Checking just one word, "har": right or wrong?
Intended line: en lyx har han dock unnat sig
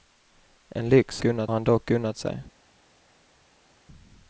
wrong